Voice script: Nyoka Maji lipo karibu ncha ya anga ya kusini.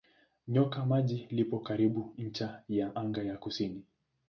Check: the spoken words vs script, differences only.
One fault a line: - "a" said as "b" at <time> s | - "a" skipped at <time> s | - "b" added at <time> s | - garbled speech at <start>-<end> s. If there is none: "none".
none